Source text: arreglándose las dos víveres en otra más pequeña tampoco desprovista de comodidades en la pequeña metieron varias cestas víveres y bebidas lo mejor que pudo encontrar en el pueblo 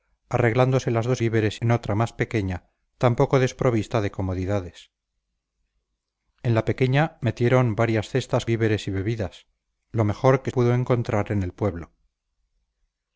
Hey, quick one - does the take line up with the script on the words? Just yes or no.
yes